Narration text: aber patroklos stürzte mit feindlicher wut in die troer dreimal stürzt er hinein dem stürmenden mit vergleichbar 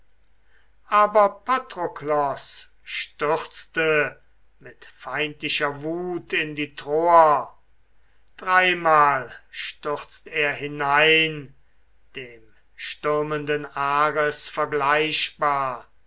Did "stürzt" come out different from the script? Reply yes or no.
no